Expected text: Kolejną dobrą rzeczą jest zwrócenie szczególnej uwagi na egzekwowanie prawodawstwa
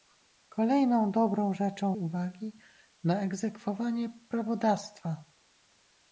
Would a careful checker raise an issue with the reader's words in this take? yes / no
yes